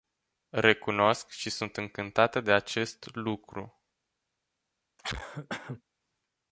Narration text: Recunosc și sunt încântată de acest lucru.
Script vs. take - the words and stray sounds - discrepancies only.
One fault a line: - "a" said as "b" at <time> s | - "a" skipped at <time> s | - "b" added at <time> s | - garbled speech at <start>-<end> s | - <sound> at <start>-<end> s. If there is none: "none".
- cough at 5.0-5.8 s